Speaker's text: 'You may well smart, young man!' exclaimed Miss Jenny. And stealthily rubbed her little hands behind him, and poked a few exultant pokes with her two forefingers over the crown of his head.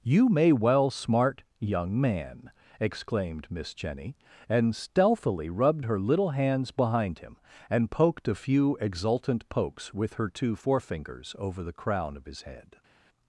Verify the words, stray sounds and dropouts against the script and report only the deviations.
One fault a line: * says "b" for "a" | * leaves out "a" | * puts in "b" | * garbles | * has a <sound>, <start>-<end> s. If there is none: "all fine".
all fine